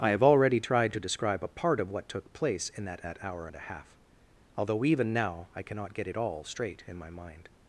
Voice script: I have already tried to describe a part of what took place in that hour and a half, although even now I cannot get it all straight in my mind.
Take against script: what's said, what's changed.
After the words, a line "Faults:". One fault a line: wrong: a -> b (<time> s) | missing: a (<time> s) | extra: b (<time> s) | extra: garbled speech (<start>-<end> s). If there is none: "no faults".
I have already tried to describe a part of what took place in that that hour and a half, although even now I cannot get it all straight in my mind.
Faults:
extra: that (3.0 s)